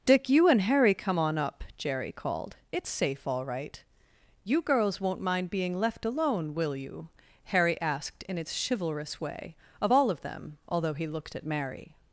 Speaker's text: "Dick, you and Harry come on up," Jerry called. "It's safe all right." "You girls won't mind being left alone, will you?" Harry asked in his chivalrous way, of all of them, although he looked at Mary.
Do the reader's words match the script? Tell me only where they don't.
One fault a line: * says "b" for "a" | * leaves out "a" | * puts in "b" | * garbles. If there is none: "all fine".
* says "its" for "his"